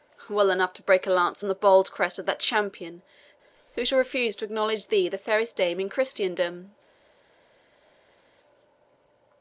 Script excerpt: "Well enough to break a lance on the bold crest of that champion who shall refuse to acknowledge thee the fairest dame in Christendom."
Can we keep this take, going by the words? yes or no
yes